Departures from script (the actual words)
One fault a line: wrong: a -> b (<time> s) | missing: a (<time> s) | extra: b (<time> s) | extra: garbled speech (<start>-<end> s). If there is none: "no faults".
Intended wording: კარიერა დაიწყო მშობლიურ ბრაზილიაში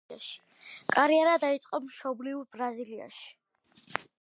no faults